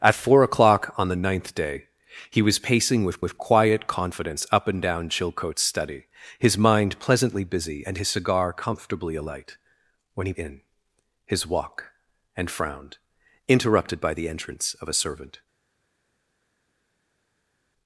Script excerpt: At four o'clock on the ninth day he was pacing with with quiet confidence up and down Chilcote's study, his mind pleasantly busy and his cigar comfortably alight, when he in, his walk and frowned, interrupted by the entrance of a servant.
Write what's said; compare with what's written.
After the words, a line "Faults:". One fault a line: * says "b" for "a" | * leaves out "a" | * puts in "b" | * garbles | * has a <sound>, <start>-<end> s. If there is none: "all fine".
At four o'clock on the ninth day he was pacing with with quiet confidence up and down Chilcote's study, his mind pleasantly busy and his cigar comfortably alight, when he in, his walk and frowned, interrupted by the entrance of a servant.
Faults:
all fine